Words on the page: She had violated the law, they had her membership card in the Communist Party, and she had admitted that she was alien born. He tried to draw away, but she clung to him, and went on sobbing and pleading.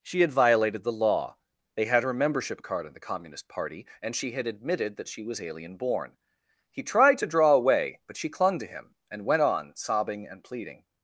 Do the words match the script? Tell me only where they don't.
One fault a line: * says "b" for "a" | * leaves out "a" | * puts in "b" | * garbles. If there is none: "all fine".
all fine